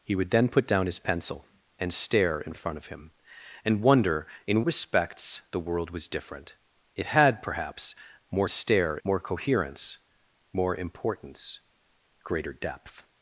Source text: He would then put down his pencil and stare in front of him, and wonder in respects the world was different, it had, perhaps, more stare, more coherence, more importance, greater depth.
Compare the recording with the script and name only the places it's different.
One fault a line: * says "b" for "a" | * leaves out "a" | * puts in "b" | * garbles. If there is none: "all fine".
all fine